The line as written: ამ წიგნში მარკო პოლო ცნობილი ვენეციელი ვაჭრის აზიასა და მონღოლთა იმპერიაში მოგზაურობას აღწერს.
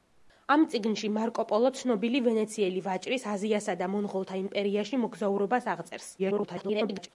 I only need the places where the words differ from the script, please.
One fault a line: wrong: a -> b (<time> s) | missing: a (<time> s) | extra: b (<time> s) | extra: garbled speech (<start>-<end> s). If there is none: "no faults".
extra: garbled speech (6.2-7.1 s)